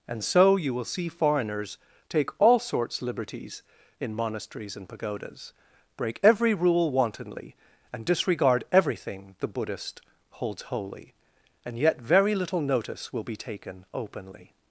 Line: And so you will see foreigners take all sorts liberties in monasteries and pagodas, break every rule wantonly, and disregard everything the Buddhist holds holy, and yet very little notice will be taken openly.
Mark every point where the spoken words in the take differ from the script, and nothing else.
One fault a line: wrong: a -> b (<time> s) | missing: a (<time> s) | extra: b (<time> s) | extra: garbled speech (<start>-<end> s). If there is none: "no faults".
no faults